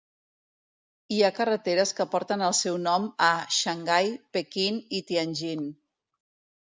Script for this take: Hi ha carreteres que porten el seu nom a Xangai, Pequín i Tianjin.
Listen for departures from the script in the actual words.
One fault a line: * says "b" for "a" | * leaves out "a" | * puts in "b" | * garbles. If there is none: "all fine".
all fine